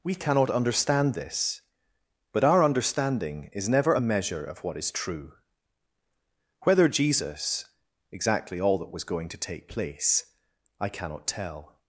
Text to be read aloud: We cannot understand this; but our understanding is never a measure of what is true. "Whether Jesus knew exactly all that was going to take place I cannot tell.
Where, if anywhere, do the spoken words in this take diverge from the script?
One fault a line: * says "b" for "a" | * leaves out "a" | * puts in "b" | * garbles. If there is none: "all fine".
* leaves out "knew"